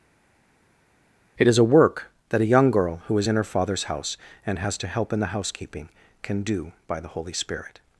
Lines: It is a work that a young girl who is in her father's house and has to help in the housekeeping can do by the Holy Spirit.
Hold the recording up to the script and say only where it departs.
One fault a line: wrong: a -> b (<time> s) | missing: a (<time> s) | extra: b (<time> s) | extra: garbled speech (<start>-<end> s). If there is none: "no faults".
no faults